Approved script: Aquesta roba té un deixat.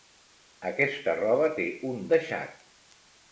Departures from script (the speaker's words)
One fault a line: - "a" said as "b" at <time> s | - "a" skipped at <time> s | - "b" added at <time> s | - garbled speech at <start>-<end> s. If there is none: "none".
none